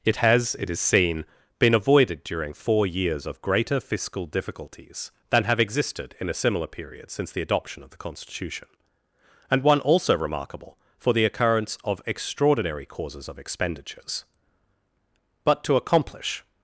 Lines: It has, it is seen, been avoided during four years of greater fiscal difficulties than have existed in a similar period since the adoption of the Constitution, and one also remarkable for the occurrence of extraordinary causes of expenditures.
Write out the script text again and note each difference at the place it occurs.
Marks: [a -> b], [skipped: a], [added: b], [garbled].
It has, it is seen, been avoided during four years of greater fiscal difficulties than have existed in a similar period since the adoption of the Constitution, and one also remarkable for the occurrence of extraordinary causes of expenditures. [added: But to accomplish]